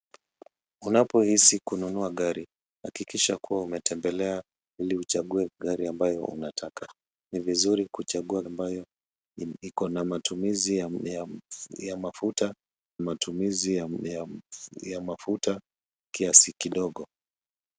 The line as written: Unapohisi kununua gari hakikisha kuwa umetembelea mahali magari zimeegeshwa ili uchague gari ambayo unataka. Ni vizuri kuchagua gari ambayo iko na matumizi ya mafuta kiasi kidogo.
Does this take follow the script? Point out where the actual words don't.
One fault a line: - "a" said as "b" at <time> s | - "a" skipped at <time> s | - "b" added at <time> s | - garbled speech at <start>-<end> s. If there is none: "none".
- "mahali magari zimeegeshwa" skipped at 4.4 s
- "gari" skipped at 8.4 s
- "matumizi ya mafuta" added at 13.0 s